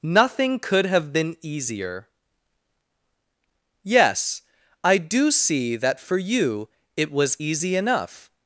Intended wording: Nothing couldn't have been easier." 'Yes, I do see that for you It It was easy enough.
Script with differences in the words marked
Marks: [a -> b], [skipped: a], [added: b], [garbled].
Nothing [couldn't -> could] have been easier." 'Yes, I do see that for you It [skipped: It] was easy enough.